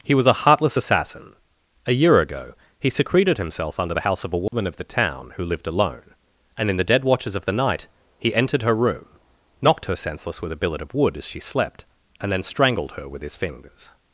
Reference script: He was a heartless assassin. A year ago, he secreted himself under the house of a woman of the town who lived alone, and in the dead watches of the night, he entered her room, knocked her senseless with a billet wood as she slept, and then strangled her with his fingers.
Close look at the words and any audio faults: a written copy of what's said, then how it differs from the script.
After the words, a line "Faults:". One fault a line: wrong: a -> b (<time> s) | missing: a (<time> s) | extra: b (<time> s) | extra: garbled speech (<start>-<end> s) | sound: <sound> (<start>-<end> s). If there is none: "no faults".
He was a heartless assassin. A year ago, he secreted himself under the house of a woman of the town who lived alone, and in the dead watches of the night, he entered her room, knocked her senseless with a billet of wood as she slept, and then strangled her with his fingers.
Faults:
sound: dropout (4.5-4.5 s)
extra: of (10.8 s)